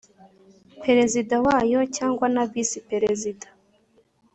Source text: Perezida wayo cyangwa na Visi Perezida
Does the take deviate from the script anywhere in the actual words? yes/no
no